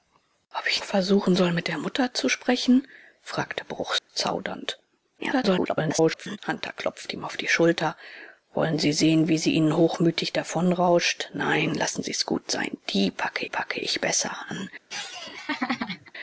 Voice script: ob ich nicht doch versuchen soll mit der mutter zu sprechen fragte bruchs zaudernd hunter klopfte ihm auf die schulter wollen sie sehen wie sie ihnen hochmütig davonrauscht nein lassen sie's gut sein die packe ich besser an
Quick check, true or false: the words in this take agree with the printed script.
false